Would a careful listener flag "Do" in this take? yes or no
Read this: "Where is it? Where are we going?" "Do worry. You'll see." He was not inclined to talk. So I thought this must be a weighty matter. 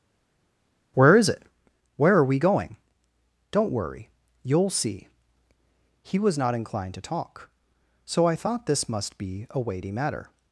yes